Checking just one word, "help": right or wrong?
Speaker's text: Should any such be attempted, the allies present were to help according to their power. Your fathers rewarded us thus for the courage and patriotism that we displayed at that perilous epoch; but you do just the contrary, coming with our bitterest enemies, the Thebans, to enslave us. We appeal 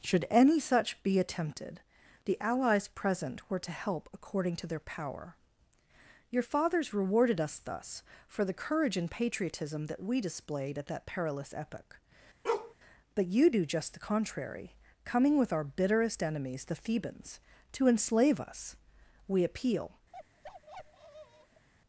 right